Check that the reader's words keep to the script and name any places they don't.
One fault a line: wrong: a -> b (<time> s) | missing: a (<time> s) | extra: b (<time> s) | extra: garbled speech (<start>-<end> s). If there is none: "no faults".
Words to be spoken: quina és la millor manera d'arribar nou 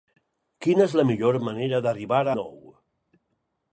no faults